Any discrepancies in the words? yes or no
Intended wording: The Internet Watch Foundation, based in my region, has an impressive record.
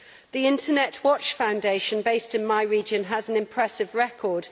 no